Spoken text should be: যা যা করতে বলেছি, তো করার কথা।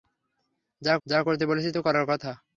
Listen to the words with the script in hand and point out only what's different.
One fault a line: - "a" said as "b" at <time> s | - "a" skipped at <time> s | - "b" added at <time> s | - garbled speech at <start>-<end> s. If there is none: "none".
none